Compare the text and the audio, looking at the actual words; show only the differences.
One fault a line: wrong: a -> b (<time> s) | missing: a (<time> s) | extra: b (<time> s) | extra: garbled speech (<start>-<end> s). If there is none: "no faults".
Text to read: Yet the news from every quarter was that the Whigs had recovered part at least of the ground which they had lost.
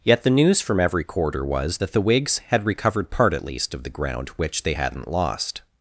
wrong: had -> hadn't (4.7 s)